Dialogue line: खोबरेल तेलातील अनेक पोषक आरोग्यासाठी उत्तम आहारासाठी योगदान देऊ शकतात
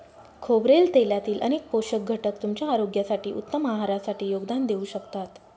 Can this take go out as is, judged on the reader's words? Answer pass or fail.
fail